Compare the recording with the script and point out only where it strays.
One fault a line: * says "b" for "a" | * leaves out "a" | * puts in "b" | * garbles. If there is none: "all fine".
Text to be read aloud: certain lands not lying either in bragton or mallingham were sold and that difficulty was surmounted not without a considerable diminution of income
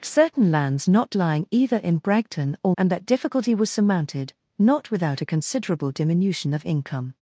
* leaves out "mallingham were sold"